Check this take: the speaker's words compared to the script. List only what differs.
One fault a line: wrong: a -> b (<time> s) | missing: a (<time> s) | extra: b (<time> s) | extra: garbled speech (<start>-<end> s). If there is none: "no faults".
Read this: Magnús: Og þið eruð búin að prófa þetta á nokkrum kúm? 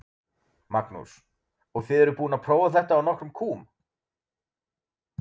no faults